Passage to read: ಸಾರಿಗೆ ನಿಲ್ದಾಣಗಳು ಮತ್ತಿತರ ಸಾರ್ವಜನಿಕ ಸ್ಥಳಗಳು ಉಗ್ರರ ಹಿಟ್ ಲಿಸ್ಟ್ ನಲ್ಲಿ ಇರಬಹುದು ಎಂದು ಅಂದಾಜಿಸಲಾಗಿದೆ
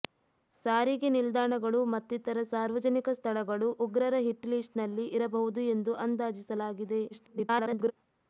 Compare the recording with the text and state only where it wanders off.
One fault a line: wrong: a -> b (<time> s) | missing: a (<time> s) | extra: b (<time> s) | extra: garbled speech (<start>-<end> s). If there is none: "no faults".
extra: garbled speech (7.1-7.9 s)